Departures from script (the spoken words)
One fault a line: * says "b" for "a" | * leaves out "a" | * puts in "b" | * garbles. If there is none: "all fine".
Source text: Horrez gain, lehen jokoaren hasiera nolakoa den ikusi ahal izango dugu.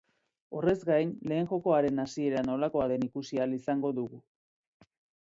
all fine